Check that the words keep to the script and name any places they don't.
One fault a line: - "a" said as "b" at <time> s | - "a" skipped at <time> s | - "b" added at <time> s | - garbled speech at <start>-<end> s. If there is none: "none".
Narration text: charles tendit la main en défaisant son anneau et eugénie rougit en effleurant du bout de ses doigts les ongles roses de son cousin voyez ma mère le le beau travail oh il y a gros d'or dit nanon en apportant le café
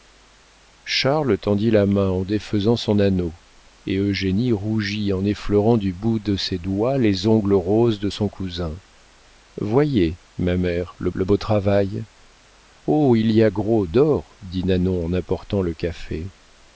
none